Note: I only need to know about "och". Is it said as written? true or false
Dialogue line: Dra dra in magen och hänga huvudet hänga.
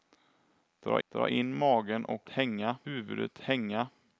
true